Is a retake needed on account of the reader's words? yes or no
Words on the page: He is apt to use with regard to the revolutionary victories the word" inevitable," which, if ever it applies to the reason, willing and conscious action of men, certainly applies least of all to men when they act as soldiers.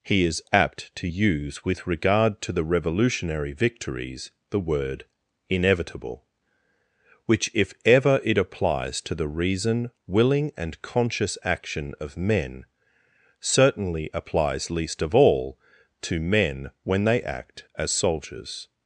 no